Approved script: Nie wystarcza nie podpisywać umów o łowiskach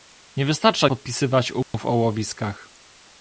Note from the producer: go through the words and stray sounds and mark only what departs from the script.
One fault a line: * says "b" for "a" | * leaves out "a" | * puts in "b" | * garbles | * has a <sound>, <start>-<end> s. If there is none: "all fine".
* leaves out "nie"
* has a dropout, 1.6-1.7 s